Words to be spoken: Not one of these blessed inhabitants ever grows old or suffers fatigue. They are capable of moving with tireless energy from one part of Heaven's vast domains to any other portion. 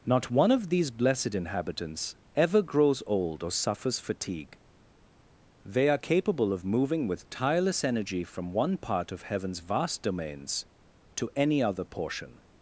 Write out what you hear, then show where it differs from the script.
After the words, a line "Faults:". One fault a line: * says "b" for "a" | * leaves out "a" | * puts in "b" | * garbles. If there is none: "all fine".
Not one of these blessed inhabitants ever grows old or suffers fatigue. They are capable of moving with tireless energy from one part of Heaven's vast domains to any other portion.
Faults:
all fine